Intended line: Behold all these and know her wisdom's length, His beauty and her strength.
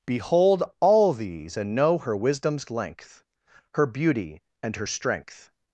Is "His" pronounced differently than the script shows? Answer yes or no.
yes